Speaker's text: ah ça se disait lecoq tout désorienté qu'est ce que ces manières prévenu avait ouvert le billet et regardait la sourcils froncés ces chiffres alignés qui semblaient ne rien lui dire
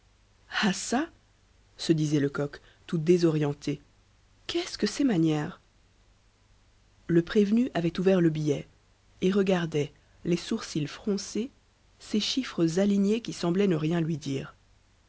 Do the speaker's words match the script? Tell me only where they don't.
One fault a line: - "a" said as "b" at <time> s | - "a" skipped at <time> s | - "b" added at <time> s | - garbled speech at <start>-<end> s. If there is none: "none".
- "le" added at 7.1 s
- "la" said as "les" at 10.2 s